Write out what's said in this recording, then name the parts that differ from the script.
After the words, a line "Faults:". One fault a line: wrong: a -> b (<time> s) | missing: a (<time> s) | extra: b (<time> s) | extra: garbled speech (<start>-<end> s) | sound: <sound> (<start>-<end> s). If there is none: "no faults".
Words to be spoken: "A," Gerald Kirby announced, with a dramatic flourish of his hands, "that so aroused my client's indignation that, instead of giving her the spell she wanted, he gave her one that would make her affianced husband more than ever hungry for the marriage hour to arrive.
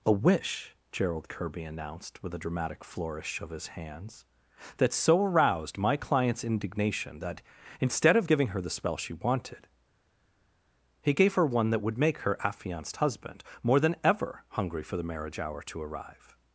"A wish," Gerald Kirby announced, with a dramatic flourish of his hands, "that so aroused my client's indignation that, instead of giving her the spell she wanted, he gave her one that would make her affianced husband more than ever hungry for the marriage hour to arrive.
Faults:
extra: wish (0.1 s)